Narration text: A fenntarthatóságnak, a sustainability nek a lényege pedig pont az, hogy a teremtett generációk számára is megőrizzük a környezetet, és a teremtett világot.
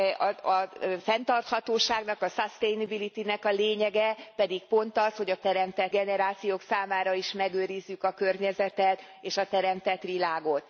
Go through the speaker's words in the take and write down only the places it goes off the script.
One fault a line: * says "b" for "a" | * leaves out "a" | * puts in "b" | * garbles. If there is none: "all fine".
all fine